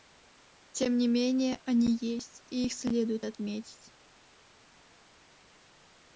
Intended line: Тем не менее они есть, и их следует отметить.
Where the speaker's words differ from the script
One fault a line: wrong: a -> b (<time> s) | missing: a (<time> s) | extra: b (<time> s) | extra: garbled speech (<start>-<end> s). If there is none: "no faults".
no faults